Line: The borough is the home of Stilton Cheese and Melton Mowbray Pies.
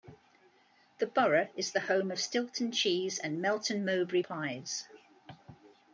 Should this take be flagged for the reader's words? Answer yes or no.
no